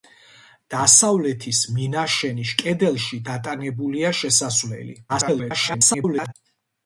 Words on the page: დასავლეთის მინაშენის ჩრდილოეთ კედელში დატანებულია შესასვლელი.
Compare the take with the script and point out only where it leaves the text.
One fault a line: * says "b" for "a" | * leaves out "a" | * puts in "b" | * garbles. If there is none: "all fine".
* leaves out "ჩრდილოეთ"
* garbles